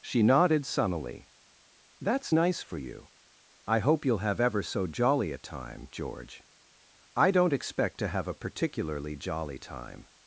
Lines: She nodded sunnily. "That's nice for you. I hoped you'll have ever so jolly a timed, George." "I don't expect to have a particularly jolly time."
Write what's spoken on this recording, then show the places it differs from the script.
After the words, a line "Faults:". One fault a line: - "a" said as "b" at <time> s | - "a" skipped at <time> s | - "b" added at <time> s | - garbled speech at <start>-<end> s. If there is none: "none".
She nodded sunnily. "That's nice for you. I hope you'll have ever so jolly a time, George." "I don't expect to have a particularly jolly time."
Faults:
- "hoped" said as "hope" at 3.8 s
- "timed" said as "time" at 5.4 s